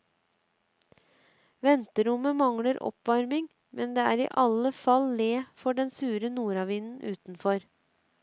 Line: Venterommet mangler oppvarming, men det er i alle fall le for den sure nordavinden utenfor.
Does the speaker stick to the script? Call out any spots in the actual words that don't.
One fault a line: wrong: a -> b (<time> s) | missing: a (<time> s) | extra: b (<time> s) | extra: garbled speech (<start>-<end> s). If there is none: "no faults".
no faults